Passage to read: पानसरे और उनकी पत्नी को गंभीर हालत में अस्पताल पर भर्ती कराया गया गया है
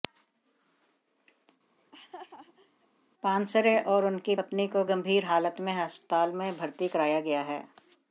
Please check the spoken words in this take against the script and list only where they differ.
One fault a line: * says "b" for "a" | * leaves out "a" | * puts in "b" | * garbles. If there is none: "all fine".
* says "में" for "पर"
* leaves out "गया"